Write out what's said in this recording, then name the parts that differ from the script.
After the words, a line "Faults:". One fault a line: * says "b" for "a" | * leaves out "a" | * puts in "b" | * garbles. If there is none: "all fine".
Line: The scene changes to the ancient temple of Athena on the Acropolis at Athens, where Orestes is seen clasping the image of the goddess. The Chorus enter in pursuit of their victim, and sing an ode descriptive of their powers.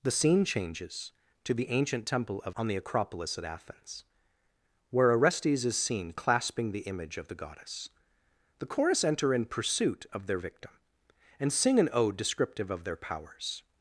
The scene changes to the ancient temple of On the Acropolis at Athens, where Orestes is seen clasping the image of the goddess. The Chorus enter in pursuit of their victim, and sing an ode descriptive of their powers.
Faults:
* leaves out "Athena"